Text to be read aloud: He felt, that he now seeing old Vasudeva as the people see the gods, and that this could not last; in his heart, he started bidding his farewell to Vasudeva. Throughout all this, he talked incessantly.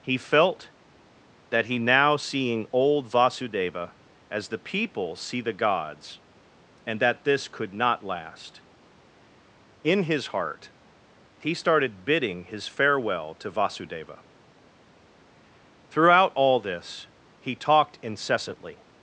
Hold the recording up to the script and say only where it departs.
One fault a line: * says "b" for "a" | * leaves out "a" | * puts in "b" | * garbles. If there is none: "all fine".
all fine